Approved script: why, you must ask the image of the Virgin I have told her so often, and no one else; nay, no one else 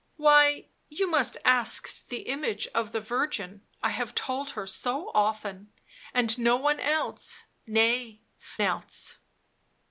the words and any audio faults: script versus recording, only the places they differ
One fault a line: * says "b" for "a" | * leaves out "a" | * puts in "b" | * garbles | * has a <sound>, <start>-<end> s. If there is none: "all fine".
* leaves out "no one"